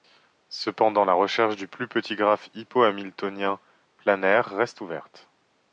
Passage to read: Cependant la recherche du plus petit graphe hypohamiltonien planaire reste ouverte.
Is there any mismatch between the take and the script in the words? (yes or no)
no